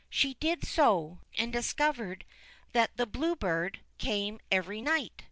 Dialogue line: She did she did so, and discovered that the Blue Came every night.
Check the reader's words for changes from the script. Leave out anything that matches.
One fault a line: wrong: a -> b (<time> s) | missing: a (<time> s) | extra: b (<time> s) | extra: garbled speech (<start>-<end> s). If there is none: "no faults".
missing: she did (0.7 s)
extra: Bird (3.4 s)